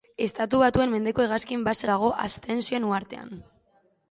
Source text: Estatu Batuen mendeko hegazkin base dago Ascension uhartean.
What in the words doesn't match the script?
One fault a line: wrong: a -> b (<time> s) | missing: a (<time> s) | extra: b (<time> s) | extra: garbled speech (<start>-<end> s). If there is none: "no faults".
no faults